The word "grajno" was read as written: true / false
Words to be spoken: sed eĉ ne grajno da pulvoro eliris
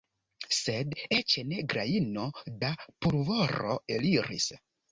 true